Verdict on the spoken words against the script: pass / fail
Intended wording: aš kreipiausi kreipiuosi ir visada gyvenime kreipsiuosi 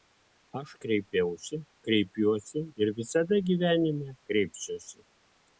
pass